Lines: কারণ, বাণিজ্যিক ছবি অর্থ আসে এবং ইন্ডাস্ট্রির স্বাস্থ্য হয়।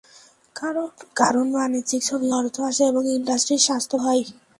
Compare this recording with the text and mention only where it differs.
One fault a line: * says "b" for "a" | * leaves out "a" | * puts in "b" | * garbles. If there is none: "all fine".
all fine